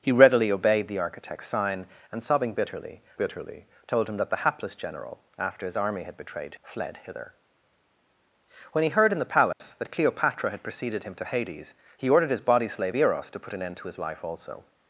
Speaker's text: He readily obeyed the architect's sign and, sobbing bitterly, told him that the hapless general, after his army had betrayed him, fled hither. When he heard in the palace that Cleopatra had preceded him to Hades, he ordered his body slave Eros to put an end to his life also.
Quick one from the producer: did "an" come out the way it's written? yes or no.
yes